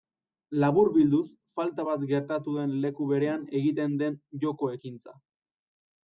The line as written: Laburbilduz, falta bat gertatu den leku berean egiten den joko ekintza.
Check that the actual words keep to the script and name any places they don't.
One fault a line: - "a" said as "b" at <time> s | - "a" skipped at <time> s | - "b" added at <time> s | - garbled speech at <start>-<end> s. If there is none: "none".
none